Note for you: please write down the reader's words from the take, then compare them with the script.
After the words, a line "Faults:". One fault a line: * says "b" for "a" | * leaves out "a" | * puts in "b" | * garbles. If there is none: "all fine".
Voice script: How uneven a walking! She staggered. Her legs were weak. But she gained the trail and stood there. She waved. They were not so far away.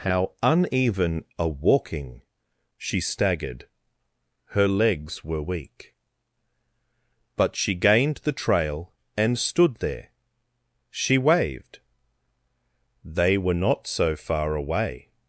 How uneven a walking! She staggered. Her legs were weak. But she gained the trail and stood there. She waved. They were not so far away.
Faults:
all fine